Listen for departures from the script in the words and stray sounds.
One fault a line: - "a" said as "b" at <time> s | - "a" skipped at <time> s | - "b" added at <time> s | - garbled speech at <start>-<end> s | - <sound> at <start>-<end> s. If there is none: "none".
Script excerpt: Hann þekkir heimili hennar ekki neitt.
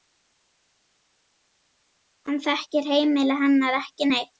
none